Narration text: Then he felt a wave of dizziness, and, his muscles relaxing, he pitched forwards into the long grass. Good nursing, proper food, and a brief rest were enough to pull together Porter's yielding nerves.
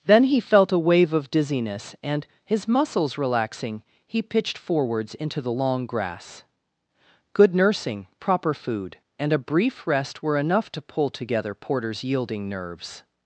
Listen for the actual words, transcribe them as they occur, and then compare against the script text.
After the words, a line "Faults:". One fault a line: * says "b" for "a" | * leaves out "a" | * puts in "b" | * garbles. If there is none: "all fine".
Then he felt a wave of dizziness, and, his muscles relaxing, he pitched forwards into the long grass. Good nursing, proper food, and a brief rest were enough to pull together Porter's yielding nerves.
Faults:
all fine